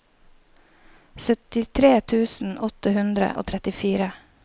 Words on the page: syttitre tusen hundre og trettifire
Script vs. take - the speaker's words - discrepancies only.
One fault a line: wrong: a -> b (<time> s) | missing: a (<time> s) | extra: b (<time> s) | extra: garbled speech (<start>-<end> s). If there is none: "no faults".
extra: åtte (2.7 s)